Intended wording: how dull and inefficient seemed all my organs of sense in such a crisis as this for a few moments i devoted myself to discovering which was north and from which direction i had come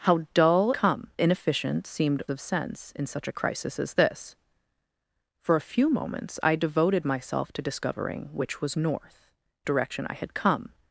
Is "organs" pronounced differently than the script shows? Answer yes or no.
yes